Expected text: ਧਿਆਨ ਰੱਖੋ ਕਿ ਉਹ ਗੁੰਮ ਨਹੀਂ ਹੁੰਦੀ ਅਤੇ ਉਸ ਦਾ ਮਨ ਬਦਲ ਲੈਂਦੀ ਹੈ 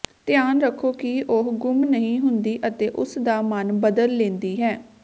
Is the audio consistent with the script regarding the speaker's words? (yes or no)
yes